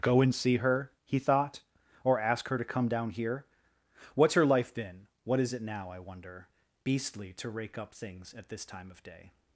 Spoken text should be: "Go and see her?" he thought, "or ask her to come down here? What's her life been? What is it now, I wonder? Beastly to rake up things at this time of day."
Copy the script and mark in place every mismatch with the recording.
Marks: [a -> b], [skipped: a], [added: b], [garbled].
"Go and see her?" he thought, "or ask her to come down here? What's her life been? What is it now, I wonder? Beastly to rake up things at this time of day."